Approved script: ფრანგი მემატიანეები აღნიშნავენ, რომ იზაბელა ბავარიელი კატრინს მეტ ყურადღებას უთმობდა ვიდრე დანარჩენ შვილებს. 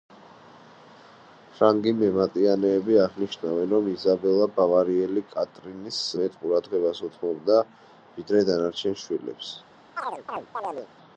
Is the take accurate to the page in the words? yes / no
yes